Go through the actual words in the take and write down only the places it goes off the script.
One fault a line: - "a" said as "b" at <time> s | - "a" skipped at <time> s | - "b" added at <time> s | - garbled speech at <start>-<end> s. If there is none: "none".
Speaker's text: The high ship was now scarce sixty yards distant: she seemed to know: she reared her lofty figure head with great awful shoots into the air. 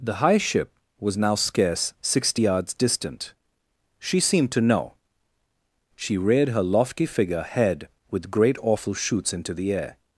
none